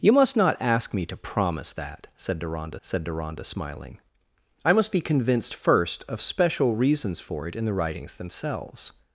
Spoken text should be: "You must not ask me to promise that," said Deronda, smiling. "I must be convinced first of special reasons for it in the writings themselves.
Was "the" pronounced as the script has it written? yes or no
yes